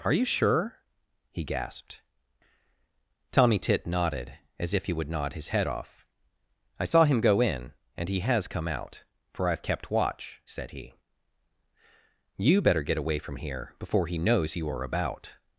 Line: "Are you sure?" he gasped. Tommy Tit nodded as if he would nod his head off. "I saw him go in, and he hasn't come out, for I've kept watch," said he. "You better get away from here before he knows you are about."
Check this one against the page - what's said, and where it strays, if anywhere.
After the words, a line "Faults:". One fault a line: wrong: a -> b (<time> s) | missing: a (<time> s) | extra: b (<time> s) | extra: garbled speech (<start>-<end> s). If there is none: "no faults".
"Are you sure?" he gasped. Tommy Tit nodded as if he would nod his head off. "I saw him go in, and he has come out, for I've kept watch," said he. "You better get away from here before he knows you are about."
Faults:
wrong: hasn't -> has (8.2 s)